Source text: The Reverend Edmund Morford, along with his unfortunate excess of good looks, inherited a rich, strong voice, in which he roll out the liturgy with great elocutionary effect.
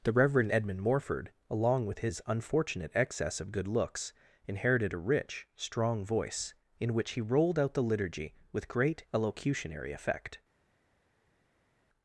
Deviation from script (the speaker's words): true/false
true